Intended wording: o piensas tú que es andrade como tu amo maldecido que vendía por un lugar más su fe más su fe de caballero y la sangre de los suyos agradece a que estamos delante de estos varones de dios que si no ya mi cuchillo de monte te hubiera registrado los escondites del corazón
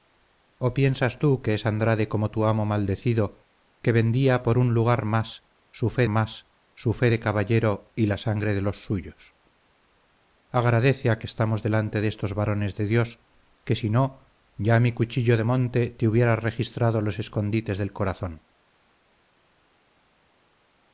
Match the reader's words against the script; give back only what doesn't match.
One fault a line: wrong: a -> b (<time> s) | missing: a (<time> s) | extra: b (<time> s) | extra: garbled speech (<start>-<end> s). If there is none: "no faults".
no faults